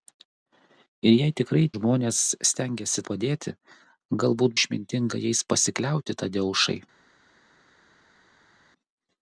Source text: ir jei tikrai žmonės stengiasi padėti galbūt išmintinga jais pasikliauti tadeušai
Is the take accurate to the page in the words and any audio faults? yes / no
yes